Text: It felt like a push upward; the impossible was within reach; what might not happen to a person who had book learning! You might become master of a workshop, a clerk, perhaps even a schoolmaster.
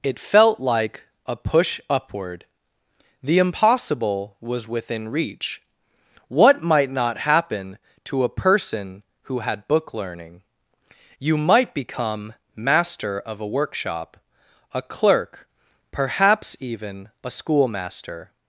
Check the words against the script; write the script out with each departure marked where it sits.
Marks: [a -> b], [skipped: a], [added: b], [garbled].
It felt like a push upward; the impossible was within reach; what might not happen to a person who had book learning! You might become master of a workshop, a clerk, perhaps even a schoolmaster.